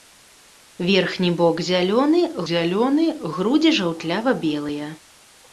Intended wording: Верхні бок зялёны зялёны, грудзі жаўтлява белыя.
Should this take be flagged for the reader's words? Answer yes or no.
no